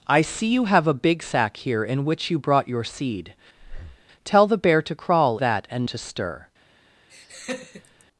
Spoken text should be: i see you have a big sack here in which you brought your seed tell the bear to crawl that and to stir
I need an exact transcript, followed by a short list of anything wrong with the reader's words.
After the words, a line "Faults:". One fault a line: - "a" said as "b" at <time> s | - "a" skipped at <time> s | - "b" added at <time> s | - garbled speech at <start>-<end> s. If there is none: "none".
i see you have a big sack here in which you brought your seed tell the bear to crawl that and to stir
Faults:
none